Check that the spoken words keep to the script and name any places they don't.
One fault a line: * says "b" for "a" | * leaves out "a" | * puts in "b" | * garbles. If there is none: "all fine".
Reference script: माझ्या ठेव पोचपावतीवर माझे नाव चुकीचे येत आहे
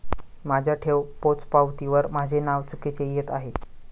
all fine